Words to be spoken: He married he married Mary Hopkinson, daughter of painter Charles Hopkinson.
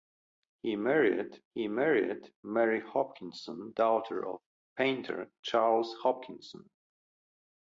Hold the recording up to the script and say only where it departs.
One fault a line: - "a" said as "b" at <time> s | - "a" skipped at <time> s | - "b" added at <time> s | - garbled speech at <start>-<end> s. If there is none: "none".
none